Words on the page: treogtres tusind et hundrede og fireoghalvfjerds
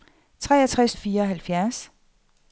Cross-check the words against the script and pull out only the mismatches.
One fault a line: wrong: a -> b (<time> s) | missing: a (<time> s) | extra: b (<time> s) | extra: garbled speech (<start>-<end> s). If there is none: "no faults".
missing: tusind et hundrede (0.9 s)